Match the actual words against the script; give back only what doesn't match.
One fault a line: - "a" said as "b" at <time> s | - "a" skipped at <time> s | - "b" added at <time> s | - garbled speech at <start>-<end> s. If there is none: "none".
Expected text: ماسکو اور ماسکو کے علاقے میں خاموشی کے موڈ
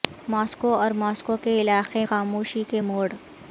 - "میں" skipped at 2.0 s